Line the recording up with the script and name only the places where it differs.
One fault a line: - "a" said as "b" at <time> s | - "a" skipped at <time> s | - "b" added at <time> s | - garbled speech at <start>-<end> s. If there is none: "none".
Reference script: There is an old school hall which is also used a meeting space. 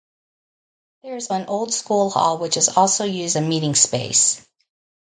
none